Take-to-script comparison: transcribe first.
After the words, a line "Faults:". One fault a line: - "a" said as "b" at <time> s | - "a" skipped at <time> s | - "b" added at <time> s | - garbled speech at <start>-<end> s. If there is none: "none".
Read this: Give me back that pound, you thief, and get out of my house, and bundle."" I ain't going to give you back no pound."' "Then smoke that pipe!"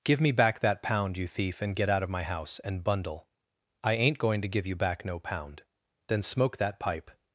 Give me back that pound, you thief, and get out of my house, and bundle."" I ain't going to give you back no pound."' "Then smoke that pipe!"
Faults:
none